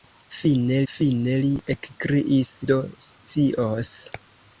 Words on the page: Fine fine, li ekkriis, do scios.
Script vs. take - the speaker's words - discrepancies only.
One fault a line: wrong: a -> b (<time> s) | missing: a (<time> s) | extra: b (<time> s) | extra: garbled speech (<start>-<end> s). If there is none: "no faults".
no faults